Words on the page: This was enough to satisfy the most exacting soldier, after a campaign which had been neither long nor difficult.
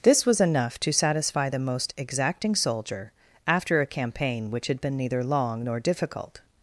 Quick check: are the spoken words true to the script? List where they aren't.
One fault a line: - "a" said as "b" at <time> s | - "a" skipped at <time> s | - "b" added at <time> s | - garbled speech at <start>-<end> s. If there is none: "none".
none